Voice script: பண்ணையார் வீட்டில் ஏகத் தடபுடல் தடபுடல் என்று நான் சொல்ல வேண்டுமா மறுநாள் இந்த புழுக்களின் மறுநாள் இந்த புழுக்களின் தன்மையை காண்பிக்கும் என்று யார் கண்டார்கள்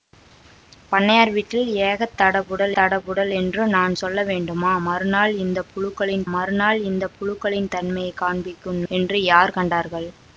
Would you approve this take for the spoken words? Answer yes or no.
yes